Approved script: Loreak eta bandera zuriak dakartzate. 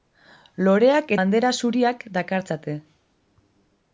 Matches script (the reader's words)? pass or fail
fail